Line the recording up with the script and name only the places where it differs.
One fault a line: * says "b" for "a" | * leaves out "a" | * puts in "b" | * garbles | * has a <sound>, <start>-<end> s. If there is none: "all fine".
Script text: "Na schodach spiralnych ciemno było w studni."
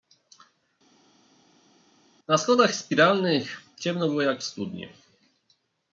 * puts in "jak"